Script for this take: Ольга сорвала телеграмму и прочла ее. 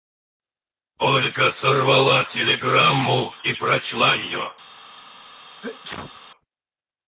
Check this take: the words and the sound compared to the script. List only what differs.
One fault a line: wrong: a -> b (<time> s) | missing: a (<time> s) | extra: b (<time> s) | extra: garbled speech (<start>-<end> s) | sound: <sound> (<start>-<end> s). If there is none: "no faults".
sound: sneeze (5.6-6.2 s)